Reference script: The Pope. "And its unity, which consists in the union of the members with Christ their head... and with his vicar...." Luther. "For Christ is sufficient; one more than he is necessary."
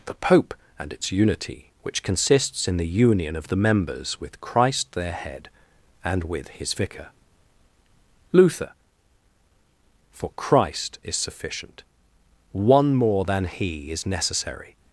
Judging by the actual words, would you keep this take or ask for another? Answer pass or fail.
pass